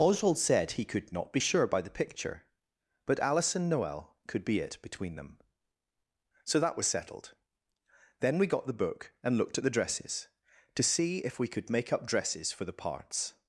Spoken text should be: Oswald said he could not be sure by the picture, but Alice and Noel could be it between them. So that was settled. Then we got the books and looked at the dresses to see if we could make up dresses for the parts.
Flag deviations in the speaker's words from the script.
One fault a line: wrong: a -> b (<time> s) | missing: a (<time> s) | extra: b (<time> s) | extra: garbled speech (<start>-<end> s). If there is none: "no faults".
wrong: books -> book (8.7 s)